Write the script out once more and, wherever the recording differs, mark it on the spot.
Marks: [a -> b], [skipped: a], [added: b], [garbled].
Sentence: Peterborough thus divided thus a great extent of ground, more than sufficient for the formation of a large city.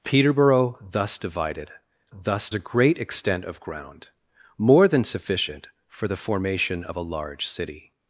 Peterborough thus divided thus a great extent of ground, more than sufficient for the formation of a large city.